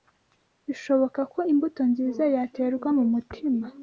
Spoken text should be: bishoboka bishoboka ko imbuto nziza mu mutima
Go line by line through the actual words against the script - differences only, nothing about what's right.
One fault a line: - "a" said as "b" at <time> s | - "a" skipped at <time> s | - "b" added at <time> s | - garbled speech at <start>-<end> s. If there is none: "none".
- "bishoboka" skipped at 1.2 s
- "yaterwa" added at 2.3 s